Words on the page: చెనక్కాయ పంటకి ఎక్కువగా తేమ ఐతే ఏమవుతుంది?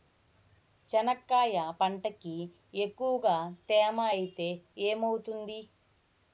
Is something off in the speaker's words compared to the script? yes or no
no